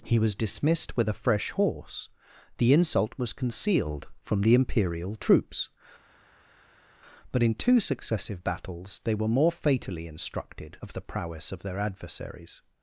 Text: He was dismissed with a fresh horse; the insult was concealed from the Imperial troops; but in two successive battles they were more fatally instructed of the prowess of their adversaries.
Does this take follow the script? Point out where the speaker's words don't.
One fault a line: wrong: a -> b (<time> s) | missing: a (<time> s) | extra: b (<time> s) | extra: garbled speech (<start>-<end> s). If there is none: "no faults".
no faults